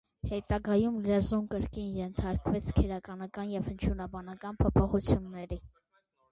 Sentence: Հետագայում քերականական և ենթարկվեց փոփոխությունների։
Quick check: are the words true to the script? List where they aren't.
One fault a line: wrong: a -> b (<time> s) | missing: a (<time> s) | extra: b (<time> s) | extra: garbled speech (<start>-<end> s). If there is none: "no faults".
extra: լեզուն կրկին ենթարկվեց (1.1 s)
wrong: ենթարկվեց -> հնչյունաբանական (3.7 s)